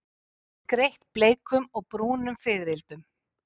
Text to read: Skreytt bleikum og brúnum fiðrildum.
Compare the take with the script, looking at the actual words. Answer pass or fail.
pass